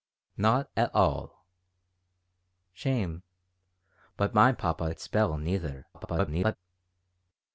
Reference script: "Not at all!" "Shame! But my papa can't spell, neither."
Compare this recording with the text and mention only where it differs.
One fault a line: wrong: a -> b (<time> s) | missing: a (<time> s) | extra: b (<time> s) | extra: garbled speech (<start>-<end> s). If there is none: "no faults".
missing: can't (5.0 s)
extra: garbled speech (5.9-6.6 s)